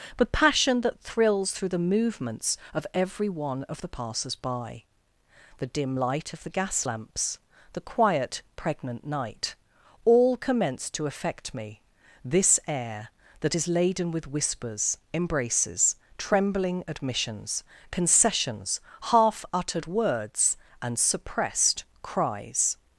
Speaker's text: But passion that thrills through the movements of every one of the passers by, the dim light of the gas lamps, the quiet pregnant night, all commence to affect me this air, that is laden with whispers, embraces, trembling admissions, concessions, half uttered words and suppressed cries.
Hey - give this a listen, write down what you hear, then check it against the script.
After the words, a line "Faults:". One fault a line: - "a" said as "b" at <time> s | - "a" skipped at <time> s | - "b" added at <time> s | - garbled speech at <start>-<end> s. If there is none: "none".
But passion that thrills through the movements of every one of the passers by, the dim light of the gas lamps, the quiet pregnant night, all commence to affect me this air, that is laden with whispers, embraces, trembling admissions, concessions, half uttered words and suppressed cries.
Faults:
none